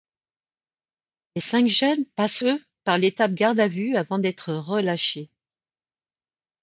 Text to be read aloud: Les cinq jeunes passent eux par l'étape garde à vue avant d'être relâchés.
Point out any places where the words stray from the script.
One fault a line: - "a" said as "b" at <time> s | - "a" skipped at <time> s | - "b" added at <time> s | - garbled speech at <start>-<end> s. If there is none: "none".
none